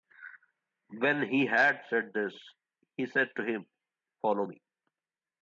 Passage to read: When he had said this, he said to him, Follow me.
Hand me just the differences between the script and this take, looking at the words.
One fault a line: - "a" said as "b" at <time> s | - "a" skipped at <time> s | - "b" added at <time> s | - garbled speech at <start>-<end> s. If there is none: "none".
none